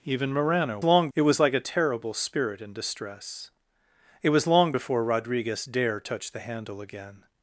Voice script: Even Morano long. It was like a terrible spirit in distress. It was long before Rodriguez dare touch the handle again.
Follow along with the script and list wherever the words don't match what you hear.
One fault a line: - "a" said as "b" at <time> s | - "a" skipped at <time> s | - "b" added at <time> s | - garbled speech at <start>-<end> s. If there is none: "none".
none